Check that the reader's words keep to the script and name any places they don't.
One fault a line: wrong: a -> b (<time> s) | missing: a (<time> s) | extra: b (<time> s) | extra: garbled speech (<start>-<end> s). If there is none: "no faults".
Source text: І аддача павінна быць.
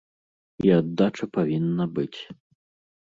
no faults